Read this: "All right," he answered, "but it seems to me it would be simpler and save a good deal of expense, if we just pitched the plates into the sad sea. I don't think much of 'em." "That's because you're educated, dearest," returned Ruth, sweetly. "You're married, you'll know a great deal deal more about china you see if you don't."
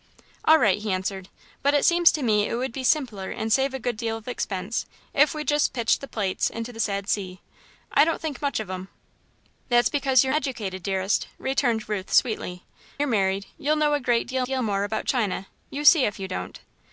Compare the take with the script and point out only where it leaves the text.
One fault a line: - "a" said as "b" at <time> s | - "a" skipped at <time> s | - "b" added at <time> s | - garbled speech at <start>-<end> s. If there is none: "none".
none